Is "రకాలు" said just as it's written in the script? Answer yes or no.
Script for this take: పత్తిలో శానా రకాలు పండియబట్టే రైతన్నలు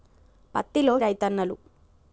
no